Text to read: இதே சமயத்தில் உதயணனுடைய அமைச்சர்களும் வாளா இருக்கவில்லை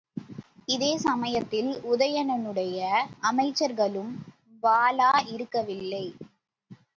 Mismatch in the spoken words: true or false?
false